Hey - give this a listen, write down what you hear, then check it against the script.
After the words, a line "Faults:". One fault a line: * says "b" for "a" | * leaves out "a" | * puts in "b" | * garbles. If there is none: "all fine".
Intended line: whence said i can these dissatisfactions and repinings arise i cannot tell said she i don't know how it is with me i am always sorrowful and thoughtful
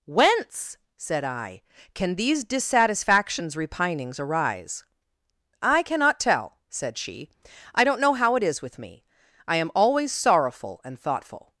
whence said i can these dissatisfactions repinings arise i cannot tell said she i don't know how it is with me i am always sorrowful and thoughtful
Faults:
* leaves out "and"